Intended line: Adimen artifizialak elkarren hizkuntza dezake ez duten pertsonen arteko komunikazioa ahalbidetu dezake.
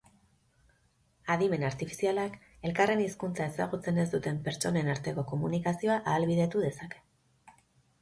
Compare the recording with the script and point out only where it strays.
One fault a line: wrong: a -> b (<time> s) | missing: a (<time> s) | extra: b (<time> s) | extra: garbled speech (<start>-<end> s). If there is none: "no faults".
wrong: dezake -> ezagutzen (3.5 s)